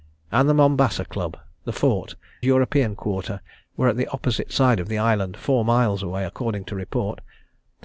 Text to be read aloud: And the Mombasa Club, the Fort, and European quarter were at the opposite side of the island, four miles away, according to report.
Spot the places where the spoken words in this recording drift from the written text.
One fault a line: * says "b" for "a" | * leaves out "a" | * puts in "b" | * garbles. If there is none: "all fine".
* leaves out "and"